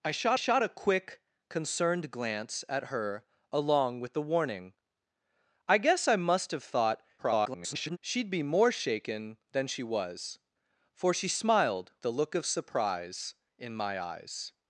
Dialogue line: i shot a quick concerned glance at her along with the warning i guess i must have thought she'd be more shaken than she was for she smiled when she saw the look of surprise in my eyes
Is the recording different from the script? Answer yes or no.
yes